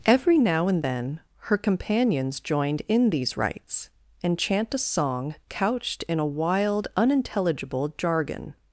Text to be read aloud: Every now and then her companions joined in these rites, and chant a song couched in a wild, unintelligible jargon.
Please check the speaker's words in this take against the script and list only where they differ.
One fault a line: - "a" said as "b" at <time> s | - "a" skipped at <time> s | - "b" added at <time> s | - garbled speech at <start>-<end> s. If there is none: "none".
none